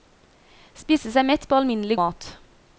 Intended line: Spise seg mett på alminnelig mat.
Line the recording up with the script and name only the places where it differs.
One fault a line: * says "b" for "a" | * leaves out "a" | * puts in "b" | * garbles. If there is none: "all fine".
all fine